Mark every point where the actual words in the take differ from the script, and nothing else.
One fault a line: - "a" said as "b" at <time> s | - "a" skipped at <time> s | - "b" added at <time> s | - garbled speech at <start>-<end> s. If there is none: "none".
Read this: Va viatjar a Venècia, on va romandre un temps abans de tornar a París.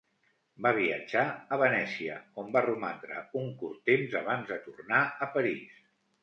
- "curt" added at 3.6 s